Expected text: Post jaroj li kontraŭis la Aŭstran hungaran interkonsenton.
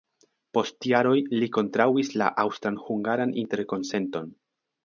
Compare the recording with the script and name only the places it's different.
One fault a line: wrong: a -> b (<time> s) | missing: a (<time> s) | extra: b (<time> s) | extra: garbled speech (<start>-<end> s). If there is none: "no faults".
no faults